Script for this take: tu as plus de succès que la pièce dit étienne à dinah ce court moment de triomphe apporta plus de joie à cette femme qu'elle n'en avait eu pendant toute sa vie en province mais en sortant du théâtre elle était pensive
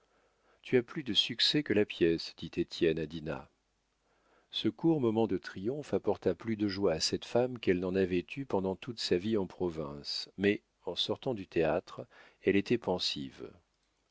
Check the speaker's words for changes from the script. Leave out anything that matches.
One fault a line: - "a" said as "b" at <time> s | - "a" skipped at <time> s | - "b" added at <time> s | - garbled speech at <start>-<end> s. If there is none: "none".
none